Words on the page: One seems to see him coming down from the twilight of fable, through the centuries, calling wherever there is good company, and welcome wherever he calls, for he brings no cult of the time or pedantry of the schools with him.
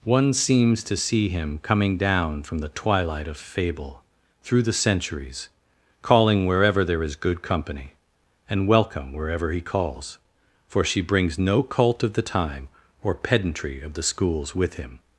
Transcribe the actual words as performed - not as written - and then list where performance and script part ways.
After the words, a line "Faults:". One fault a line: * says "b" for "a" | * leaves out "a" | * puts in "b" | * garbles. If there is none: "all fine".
One seems to see him coming down from the twilight of fable, through the centuries, calling wherever there is good company, and welcome wherever he calls, for she brings no cult of the time or pedantry of the schools with him.
Faults:
* says "she" for "he"